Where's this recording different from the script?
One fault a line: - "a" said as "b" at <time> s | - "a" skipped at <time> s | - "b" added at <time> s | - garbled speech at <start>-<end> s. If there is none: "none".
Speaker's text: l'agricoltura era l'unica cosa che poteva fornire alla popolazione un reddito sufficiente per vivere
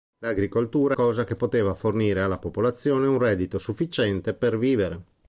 - "era l'unica" skipped at 1.0 s